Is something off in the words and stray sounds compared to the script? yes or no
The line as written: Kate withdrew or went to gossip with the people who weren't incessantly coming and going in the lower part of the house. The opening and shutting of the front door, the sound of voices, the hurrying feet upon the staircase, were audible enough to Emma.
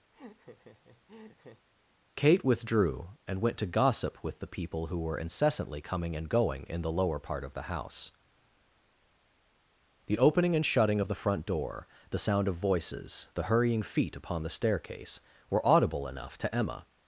yes